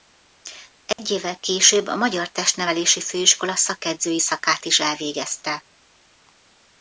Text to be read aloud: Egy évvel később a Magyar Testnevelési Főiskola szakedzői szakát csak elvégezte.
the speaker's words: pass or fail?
fail